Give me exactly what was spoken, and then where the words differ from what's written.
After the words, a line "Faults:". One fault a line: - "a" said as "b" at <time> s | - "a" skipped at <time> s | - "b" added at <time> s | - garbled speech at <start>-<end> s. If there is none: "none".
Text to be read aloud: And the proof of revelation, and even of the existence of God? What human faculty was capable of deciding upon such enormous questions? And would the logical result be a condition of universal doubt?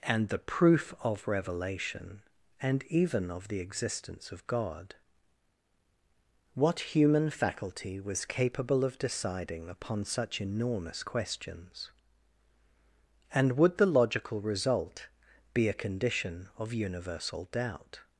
And the proof of revelation, and even of the existence of God? What human faculty was capable of deciding upon such enormous questions? And would the logical result be a condition of universal doubt?
Faults:
none